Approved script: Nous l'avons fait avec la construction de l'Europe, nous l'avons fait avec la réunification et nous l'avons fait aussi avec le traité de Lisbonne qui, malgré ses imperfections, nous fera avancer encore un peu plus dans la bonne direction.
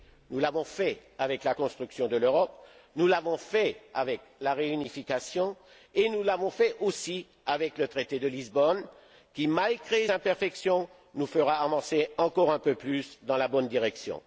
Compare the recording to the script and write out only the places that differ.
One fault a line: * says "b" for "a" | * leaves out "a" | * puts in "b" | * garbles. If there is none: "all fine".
* leaves out "ses"